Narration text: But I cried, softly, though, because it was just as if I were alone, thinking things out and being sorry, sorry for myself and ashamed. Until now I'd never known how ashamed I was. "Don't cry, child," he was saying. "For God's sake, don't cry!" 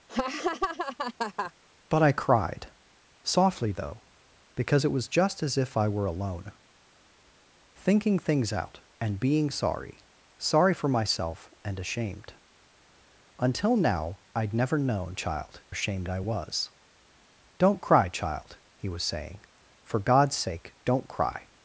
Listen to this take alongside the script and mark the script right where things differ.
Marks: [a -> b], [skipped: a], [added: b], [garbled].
But I cried, softly, though, because it was just as if I were alone, thinking things out and being sorry, sorry for myself and ashamed. Until now I'd never known [how -> child] ashamed I was. "Don't cry, child," he was saying. "For God's sake, don't cry!"